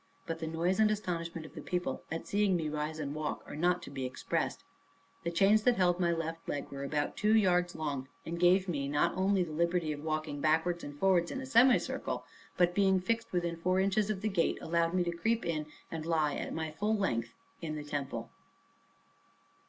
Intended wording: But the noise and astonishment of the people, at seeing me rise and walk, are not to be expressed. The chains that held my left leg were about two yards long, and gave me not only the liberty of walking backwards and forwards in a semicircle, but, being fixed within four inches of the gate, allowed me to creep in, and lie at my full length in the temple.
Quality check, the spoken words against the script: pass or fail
pass